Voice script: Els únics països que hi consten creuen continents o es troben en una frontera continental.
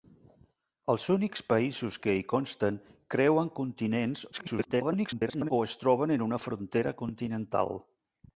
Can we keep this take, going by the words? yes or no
no